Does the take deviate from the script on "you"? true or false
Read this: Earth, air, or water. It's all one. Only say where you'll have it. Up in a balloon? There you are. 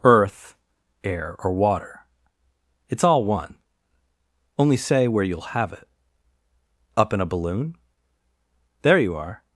false